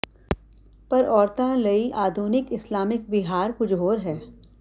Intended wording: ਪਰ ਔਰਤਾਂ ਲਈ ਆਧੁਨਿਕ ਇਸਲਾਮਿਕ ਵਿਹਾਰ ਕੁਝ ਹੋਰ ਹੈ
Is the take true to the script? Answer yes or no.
yes